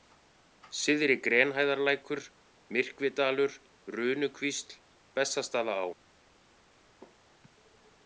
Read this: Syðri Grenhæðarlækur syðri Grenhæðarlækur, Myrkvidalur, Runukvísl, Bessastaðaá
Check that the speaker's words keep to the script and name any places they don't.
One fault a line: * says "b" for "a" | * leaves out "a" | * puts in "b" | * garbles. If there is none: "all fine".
* leaves out "syðri Grenhæðarlækur"